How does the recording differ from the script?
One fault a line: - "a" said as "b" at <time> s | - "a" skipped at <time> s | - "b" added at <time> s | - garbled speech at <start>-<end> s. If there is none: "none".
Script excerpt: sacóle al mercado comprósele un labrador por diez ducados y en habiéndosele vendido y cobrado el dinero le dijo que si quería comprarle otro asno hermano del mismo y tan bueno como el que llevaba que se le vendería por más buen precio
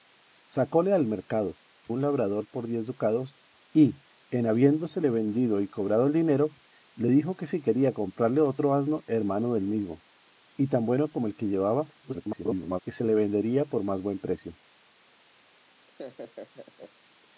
- "comprósele" skipped at 1.6 s
- garbled speech at 12.0-12.8 s